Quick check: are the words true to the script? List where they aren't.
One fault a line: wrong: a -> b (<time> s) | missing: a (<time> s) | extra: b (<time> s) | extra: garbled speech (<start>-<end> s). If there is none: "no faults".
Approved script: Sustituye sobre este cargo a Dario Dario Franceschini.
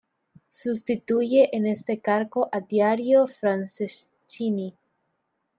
wrong: sobre -> en (1.6 s)
missing: Dario (3.3 s)